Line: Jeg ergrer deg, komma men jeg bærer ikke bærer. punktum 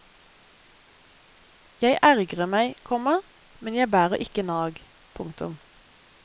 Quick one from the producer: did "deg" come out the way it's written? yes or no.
no